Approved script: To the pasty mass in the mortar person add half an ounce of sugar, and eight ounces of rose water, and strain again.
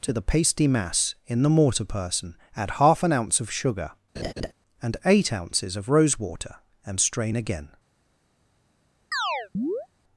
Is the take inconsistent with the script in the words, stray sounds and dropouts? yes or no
yes